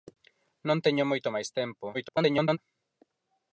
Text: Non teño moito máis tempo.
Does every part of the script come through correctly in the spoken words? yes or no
no